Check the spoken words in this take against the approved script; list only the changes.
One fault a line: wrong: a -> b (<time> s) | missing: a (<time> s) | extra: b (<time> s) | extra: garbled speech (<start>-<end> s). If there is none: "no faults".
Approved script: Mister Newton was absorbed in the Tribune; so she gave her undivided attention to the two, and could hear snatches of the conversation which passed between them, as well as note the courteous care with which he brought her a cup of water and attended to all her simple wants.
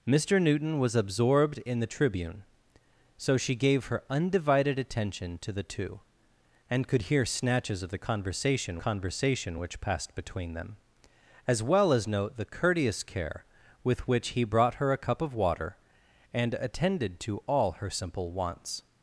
extra: conversation (8.8 s)